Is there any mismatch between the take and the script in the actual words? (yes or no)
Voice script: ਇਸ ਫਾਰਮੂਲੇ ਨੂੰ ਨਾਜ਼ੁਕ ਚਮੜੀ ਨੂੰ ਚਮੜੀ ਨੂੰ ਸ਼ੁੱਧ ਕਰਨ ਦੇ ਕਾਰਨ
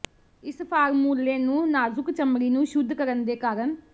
yes